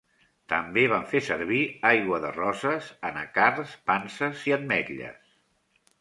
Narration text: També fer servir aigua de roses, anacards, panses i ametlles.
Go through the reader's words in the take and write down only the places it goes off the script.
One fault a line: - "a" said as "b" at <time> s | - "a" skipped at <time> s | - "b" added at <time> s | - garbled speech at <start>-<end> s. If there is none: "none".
- "van" added at 0.9 s